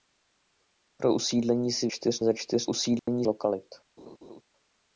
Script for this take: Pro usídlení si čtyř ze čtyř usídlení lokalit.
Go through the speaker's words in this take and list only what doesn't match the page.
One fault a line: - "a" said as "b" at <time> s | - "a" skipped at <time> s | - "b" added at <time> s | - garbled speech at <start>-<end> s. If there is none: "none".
none